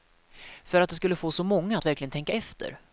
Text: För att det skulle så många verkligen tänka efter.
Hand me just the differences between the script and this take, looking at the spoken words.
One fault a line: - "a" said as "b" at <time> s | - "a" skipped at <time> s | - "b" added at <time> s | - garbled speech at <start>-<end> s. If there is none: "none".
- "få" added at 1.1 s
- "att" added at 1.8 s